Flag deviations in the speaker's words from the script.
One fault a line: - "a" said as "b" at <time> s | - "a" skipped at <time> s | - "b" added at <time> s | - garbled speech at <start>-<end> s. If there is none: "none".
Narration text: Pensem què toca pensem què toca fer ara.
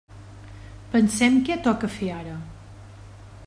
- "pensem què toca" skipped at 1.9 s